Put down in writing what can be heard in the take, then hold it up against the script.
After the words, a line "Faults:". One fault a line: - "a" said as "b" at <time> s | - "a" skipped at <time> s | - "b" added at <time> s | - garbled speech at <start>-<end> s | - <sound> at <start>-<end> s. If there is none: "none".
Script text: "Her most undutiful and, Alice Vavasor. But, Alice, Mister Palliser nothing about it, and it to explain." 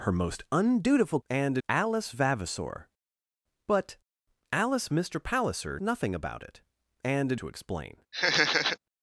"Her most undutiful and, Alice Vavasor. But, Alice, Mister Palliser nothing about it, and it to explain."
Faults:
- laugh at 8.1-8.8 s